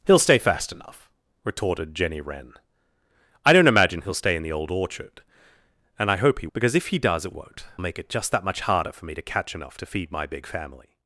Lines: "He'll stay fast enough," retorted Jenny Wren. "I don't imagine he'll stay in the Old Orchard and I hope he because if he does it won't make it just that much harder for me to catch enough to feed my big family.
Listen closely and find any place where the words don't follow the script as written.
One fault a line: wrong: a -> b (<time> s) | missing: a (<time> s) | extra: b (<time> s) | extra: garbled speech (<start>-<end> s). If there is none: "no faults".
no faults